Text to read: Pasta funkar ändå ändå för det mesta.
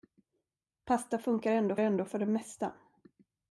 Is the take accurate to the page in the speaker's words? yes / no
yes